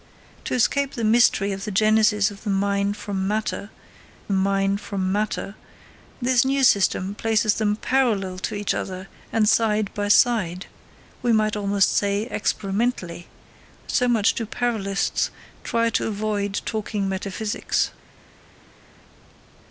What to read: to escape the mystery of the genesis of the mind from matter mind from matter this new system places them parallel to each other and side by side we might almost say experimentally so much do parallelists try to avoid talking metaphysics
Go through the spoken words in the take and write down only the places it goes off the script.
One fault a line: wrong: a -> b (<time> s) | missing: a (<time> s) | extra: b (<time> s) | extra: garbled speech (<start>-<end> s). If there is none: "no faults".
no faults